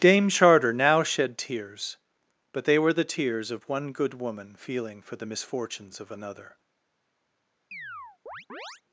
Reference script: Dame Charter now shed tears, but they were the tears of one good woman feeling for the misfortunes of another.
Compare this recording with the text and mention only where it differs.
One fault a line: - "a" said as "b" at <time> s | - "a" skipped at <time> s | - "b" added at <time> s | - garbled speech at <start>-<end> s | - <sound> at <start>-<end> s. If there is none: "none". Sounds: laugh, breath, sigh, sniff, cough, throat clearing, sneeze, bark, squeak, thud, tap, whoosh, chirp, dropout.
- chirp at 7.7-8.8 s